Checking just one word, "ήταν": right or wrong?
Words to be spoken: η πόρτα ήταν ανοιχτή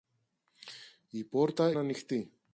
wrong